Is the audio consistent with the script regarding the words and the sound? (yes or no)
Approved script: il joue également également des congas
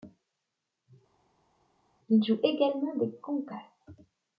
no